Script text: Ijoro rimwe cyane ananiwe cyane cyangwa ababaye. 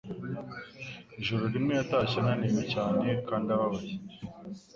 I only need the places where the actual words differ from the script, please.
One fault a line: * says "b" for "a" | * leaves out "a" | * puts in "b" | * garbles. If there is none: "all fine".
* says "yatashye" for "cyane"
* says "kandi" for "cyangwa"